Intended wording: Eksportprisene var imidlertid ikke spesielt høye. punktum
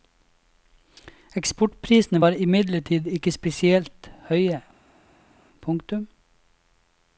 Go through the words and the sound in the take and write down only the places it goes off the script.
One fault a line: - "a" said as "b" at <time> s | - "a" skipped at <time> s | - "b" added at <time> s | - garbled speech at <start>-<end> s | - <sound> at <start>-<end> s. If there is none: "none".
none